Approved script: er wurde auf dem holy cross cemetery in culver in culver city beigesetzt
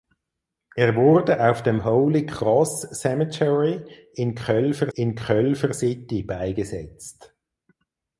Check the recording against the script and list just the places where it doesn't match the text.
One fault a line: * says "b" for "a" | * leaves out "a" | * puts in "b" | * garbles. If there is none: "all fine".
all fine